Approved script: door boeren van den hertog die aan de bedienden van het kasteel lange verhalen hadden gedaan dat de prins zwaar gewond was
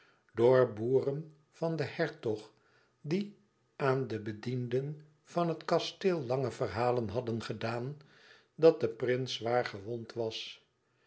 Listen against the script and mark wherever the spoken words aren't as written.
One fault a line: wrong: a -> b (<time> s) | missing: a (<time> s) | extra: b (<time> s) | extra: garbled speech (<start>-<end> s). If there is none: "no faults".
no faults